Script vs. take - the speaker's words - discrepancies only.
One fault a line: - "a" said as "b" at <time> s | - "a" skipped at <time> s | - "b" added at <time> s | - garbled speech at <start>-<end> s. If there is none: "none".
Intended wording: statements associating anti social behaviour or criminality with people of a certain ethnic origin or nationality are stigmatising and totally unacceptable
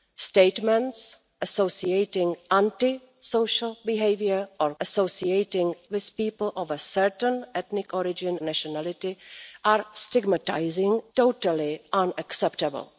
- "criminality" said as "associating" at 4.8 s
- "or" skipped at 8.4 s
- "and" skipped at 11.0 s